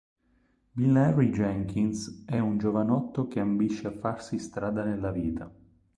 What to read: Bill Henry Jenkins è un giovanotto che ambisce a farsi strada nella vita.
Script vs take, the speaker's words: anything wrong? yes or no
no